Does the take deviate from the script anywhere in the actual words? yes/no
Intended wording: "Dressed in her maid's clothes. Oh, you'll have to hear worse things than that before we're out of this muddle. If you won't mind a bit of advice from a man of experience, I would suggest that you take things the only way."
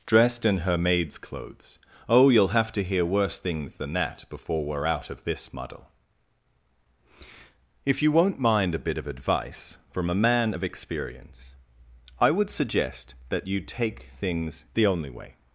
no